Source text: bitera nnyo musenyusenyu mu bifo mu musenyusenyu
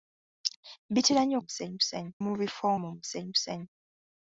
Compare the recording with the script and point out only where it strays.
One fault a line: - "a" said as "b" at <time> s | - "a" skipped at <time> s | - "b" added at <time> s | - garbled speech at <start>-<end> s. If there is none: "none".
none